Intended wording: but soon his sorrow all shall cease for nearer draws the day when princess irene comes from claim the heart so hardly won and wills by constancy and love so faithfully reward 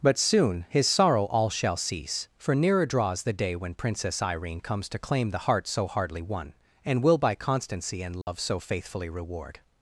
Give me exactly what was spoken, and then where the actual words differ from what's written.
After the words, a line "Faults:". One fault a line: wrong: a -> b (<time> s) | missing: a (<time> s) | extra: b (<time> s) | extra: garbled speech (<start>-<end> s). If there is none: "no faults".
but soon his sorrow all shall cease for nearer draws the day when princess irene comes to claim the heart so hardly won and will by constancy and love so faithfully reward
Faults:
wrong: from -> to (4.9 s)
wrong: wills -> will (7.0 s)